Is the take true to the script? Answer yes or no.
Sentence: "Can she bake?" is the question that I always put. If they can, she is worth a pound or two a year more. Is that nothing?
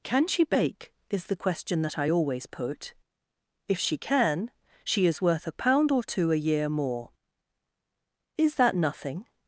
no